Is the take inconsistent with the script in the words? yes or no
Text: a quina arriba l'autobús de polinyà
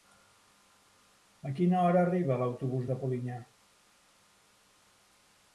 yes